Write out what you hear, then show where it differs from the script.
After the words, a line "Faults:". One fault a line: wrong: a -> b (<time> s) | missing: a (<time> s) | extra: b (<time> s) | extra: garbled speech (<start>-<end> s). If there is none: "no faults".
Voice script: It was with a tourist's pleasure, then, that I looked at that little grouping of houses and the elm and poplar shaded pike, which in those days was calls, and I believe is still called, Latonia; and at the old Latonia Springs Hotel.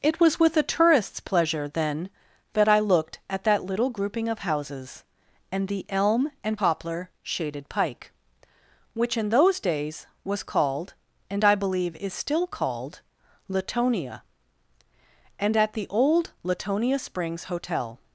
It was with a tourist's pleasure, then, that I looked at that little grouping of houses and the elm and poplar shaded pike, which in those days was called, and I believe is still called, Latonia; and at the old Latonia Springs Hotel.
Faults:
wrong: calls -> called (10.4 s)